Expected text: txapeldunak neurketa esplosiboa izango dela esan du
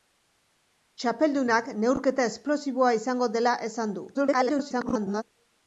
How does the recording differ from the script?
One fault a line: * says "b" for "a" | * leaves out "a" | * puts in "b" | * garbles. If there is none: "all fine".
* garbles